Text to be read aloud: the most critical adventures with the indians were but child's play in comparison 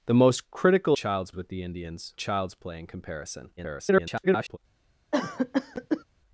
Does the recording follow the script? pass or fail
fail